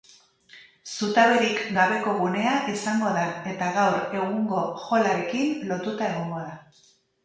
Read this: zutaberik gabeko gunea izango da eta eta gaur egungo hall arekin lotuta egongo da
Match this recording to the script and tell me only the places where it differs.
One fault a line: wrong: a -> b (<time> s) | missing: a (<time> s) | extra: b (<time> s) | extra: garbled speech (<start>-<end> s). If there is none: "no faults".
missing: eta (3.7 s)